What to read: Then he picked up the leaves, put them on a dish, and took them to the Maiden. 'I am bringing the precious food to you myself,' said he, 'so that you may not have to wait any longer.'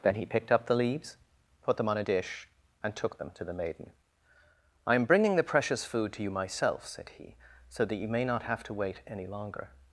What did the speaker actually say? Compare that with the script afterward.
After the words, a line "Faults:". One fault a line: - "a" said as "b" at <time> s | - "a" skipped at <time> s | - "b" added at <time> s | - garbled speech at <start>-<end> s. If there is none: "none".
Then he picked up the leaves, put them on a dish, and took them to the Maiden. 'I am bringing the precious food to you myself,' said he, 'so that you may not have to wait any longer.'
Faults:
none